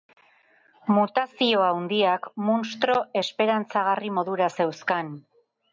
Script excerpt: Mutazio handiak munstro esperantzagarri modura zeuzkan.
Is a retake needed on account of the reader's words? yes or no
no